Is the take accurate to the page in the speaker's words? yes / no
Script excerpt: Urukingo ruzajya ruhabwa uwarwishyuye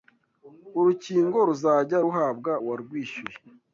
yes